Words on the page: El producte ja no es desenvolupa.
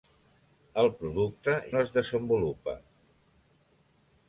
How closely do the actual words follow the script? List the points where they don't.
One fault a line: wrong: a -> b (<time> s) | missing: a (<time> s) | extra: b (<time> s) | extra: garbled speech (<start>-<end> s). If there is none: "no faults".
missing: ja (1.6 s)